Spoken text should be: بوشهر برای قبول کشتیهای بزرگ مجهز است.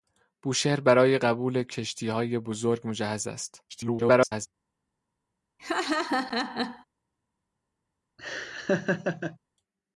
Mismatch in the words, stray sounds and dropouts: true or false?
true